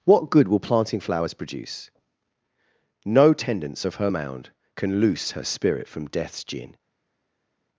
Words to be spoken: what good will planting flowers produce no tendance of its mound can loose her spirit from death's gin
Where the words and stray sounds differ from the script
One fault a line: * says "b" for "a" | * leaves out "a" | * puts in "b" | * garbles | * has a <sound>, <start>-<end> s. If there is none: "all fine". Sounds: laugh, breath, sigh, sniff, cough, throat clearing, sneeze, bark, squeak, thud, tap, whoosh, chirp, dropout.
* says "her" for "its"